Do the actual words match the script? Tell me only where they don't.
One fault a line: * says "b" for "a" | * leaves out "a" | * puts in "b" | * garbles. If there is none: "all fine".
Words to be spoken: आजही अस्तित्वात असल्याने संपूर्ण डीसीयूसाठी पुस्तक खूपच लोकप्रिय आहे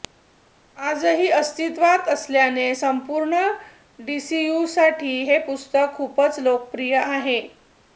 * puts in "हे"